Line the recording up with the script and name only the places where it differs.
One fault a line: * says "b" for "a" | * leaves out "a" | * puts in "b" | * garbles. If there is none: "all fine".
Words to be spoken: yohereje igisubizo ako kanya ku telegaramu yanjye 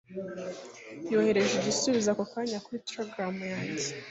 * says "kuri" for "ku"